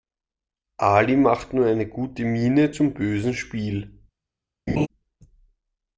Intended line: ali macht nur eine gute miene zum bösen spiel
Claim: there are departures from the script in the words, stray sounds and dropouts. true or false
true